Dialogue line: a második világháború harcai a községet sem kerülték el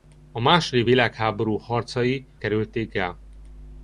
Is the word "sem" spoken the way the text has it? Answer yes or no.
no